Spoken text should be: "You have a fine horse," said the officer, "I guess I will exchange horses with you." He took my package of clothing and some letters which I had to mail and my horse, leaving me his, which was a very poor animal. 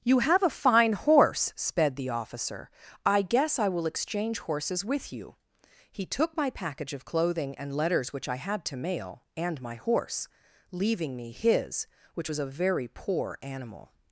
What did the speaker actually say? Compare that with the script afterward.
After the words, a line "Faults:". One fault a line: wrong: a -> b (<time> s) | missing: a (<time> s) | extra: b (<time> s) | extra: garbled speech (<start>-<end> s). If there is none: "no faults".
"You have a fine horse," sped the officer, "I guess I will exchange horses with you." He took my package of clothing and letters which I had to mail and my horse, leaving me his, which was a very poor animal.
Faults:
wrong: said -> sped (1.6 s)
missing: some (7.8 s)